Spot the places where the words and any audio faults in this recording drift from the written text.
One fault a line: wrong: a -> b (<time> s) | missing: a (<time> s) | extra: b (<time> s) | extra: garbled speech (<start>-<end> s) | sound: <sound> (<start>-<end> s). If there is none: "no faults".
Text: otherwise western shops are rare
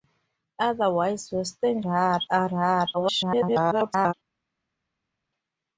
wrong: shops -> rare (1.8 s)
extra: garbled speech (2.9-4.1 s)